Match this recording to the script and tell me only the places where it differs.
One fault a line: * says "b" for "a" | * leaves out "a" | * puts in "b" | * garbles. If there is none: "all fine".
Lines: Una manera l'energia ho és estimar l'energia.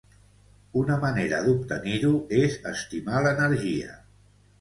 * says "d'obtenir" for "l'energia"